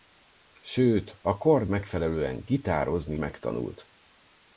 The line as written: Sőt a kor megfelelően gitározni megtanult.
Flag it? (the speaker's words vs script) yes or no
no